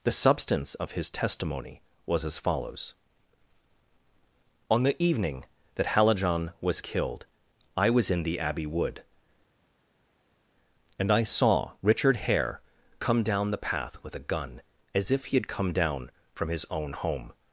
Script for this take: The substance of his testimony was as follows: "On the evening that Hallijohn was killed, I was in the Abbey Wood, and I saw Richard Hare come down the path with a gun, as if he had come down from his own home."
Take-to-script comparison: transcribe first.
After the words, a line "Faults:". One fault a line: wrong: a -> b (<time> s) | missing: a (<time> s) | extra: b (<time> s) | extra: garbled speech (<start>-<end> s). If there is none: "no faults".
The substance of his testimony was as follows: "On the evening that Hallijohn was killed, I was in the Abbey Wood, and I saw Richard Hare come down the path with a gun, as if he had come down from his own home."
Faults:
no faults